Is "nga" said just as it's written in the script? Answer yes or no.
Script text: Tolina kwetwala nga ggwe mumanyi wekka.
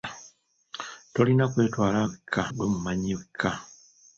no